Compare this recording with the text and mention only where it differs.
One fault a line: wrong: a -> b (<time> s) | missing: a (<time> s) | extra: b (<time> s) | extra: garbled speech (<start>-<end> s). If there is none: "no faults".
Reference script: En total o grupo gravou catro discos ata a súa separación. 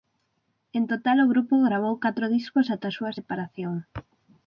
no faults